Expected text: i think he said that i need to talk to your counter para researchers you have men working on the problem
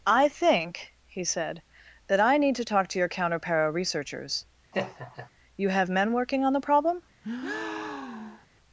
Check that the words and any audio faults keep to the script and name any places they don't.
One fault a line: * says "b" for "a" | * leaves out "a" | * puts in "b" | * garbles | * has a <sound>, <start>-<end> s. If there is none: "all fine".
* has a laugh, 4.7-5.3 s
* has a breath, 7.2-8.5 s